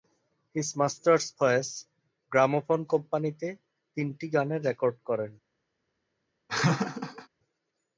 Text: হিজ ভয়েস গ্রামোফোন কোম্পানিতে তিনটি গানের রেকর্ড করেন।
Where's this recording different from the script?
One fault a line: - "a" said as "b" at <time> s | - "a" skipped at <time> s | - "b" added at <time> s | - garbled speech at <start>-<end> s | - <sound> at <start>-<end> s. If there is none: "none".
- "মাস্টার্স" added at 0.8 s
- laugh at 6.5-7.3 s